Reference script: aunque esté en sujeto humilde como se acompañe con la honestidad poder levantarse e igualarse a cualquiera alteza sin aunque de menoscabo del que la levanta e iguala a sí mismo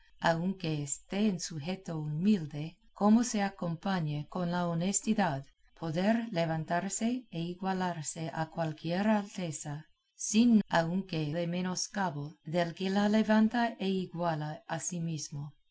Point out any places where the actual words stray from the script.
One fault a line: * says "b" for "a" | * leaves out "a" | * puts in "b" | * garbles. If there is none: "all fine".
all fine